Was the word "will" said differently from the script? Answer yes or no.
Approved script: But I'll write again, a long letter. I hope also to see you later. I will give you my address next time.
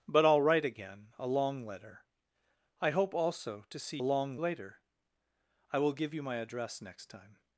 no